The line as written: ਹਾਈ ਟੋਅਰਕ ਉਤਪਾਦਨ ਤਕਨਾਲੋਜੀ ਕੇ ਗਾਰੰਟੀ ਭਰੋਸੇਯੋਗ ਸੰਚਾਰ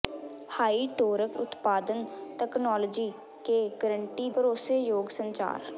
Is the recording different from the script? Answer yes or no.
no